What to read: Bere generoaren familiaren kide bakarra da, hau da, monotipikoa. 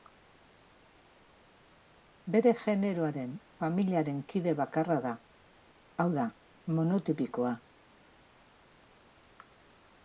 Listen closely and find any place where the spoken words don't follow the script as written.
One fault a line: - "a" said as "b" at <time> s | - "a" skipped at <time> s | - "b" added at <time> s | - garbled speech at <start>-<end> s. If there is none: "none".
none